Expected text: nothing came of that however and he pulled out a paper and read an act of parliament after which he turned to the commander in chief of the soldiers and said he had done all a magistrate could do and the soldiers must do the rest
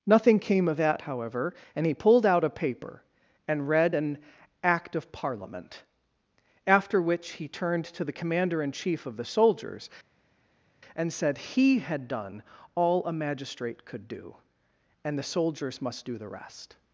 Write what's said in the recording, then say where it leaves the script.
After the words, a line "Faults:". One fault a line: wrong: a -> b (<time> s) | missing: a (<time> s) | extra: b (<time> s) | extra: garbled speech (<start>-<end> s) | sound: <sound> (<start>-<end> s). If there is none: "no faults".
nothing came of that however and he pulled out a paper and read an act of parliament after which he turned to the commander in chief of the soldiers and said he had done all a magistrate could do and the soldiers must do the rest
Faults:
no faults